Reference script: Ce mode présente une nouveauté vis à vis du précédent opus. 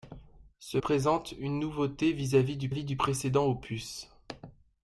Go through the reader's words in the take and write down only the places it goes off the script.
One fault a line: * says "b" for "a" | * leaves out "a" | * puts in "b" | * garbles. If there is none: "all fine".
* leaves out "mode"
* puts in "vis du"